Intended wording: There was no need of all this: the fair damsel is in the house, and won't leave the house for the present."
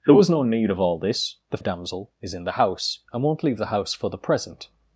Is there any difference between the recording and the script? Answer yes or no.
yes